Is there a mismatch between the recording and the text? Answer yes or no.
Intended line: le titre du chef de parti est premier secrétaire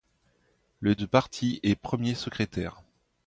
yes